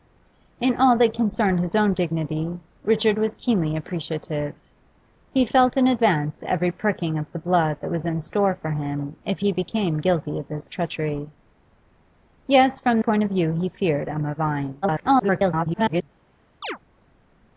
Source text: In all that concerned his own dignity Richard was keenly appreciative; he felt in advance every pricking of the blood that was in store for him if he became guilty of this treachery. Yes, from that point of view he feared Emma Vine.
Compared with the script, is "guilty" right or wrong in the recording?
right